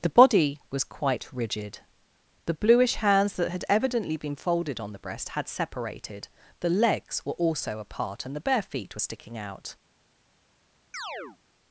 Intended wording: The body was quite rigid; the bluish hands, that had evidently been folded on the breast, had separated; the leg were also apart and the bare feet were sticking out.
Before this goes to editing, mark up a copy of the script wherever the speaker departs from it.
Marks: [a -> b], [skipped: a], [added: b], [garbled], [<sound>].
The body was quite rigid; the bluish hands, that had evidently been folded on the breast, had separated; the [leg -> legs] were also apart and the bare feet were sticking out. [chirp]